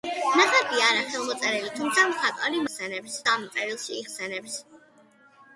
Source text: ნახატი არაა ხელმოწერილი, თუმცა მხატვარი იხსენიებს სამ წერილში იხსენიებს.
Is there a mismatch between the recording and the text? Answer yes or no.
no